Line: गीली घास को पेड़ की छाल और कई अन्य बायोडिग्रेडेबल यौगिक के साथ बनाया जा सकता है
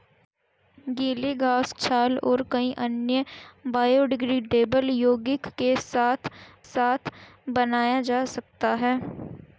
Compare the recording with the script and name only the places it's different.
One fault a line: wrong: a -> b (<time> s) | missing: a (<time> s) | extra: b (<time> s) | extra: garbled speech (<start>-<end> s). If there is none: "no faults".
missing: को पेड़ की (1.7 s)
extra: साथ (6.6 s)